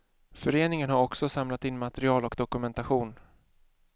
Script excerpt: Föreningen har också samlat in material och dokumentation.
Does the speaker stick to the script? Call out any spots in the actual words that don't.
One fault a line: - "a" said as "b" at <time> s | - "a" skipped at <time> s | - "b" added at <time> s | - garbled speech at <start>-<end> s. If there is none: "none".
none